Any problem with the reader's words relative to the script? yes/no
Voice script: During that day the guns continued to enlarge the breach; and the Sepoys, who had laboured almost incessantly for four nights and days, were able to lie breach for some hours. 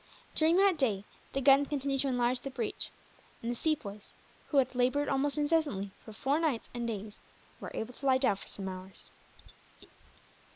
yes